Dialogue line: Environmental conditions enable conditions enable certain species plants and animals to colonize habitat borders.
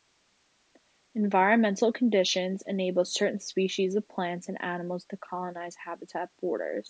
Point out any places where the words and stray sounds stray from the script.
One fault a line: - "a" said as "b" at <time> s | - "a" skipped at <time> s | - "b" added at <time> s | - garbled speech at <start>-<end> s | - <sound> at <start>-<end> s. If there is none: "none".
- "conditions enable" skipped at 3.0 s
- "of" added at 4.0 s